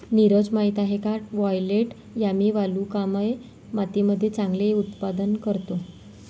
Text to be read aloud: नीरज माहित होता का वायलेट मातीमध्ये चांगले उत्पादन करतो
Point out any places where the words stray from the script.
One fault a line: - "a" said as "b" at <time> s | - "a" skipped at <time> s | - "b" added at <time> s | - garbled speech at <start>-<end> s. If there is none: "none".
- "होता" said as "आहे" at 0.8 s
- "यामी वालुकामय" added at 2.2 s